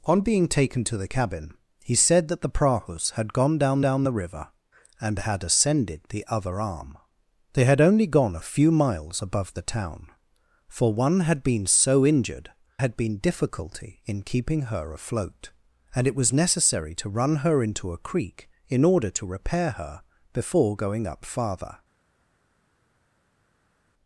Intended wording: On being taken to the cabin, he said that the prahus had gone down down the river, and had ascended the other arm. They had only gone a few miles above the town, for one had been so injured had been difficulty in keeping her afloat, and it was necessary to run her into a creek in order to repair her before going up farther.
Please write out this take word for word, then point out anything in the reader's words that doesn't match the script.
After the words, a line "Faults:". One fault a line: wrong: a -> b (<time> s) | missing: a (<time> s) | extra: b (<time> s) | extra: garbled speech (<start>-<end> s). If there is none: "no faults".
On being taken to the cabin, he said that the prahus had gone down down the river, and had ascended the other arm. They had only gone a few miles above the town, for one had been so injured had been difficulty in keeping her afloat, and it was necessary to run her into a creek in order to repair her before going up farther.
Faults:
no faults